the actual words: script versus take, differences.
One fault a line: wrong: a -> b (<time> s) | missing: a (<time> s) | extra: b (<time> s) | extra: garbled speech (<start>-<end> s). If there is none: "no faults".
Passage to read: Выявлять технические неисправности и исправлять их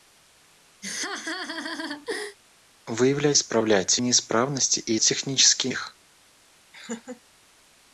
wrong: технические -> исправлять (3.3 s)
wrong: исправлять -> технические (5.0 s)